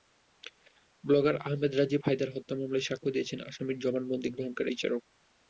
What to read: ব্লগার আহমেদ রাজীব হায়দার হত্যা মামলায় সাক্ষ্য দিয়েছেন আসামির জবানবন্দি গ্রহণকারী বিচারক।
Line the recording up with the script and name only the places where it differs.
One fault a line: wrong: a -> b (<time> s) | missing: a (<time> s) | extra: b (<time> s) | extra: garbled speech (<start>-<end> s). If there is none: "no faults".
no faults